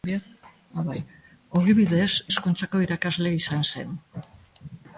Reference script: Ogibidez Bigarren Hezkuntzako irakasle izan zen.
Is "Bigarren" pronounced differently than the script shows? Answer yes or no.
yes